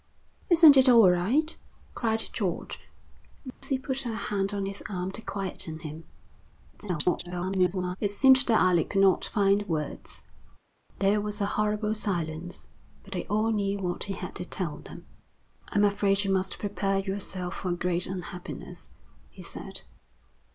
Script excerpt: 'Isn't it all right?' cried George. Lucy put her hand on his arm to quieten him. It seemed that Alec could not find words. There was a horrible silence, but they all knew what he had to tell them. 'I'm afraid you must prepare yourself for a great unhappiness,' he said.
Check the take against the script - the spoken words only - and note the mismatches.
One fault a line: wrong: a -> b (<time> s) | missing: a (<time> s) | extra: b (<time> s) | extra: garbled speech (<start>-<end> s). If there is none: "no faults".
extra: garbled speech (6.7-8.0 s)